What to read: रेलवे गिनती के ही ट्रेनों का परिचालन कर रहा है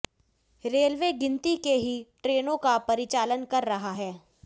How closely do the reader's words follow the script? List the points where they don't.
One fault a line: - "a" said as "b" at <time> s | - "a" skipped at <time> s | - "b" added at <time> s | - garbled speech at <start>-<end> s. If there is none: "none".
none